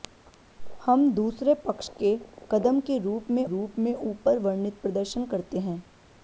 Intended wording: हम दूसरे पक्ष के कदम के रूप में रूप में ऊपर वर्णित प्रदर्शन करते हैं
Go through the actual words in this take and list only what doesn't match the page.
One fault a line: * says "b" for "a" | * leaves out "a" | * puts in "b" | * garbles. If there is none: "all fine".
all fine